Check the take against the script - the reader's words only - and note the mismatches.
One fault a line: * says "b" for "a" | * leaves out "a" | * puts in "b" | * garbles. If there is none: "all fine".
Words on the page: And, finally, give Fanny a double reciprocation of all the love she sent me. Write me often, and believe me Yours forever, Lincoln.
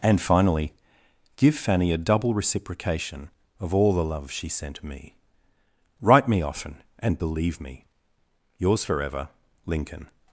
all fine